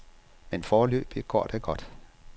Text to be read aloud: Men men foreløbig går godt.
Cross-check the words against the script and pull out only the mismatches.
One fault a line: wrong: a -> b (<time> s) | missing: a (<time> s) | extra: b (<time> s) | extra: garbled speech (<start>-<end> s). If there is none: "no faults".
missing: men (0.6 s)
extra: det (1.4 s)